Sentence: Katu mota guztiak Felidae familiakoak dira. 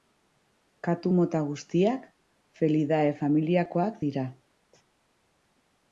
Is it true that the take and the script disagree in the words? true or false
false